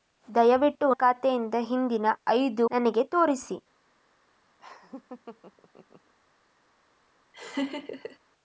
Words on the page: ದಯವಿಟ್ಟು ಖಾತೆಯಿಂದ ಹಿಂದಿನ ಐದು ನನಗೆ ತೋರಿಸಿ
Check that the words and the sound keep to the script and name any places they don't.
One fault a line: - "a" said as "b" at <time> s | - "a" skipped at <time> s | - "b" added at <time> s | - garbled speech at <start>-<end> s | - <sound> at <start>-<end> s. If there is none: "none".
- laugh at 4.6-6.1 s
- laugh at 7.3-8.2 s